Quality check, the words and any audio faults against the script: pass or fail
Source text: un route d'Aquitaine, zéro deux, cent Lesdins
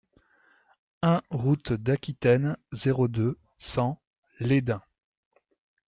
pass